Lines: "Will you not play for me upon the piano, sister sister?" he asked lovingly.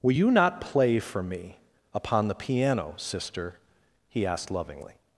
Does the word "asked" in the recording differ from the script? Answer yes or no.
no